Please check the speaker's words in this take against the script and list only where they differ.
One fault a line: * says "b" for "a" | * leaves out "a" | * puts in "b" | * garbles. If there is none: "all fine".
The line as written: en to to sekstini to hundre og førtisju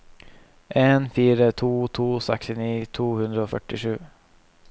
* puts in "fire"